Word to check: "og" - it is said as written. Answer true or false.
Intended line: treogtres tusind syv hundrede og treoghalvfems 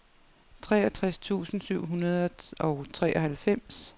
true